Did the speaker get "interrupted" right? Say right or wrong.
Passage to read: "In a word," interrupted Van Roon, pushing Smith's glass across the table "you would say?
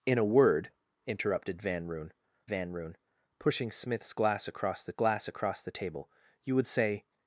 right